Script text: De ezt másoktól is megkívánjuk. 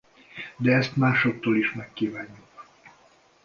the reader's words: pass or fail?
pass